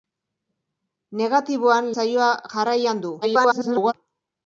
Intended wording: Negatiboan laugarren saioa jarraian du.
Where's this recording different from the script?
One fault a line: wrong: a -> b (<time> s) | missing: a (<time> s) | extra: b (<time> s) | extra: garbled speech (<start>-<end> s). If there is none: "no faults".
missing: laugarren (1.9 s)
extra: garbled speech (3.2-3.9 s)